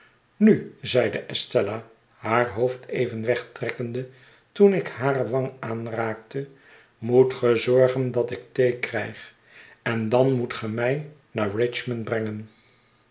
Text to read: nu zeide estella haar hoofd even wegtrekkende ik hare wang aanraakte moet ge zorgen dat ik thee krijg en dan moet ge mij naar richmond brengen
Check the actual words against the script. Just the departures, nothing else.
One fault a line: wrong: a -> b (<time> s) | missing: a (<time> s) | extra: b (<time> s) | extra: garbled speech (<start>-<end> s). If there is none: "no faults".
extra: toen (4.5 s)